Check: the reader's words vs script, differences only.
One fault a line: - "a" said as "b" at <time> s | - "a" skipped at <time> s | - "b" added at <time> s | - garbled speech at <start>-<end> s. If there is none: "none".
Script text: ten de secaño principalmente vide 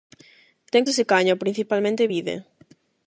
none